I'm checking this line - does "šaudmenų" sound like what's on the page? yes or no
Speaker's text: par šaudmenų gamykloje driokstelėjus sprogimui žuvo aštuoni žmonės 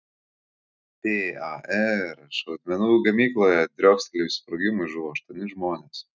yes